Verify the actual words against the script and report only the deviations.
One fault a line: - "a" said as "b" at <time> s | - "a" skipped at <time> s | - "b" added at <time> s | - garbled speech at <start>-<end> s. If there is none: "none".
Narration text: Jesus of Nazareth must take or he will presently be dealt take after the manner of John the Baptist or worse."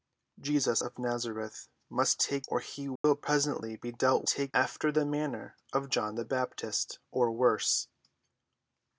none